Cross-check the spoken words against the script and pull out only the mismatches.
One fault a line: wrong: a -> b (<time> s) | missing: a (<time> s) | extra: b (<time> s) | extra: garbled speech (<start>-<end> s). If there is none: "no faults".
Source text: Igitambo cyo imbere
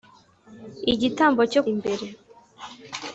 no faults